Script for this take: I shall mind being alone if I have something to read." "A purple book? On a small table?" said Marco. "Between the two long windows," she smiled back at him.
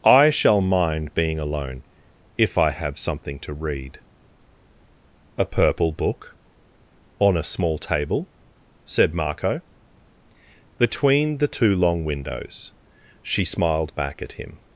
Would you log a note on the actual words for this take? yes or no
no